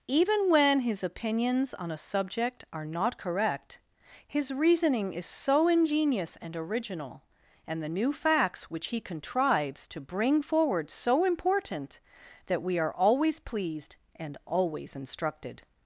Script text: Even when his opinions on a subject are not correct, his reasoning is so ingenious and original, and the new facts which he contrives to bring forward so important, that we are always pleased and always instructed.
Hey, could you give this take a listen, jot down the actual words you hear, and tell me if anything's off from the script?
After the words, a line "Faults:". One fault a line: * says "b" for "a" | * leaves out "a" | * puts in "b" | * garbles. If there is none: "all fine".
Even when his opinions on a subject are not correct, his reasoning is so ingenious and original, and the new facts which he contrives to bring forward so important, that we are always pleased and always instructed.
Faults:
all fine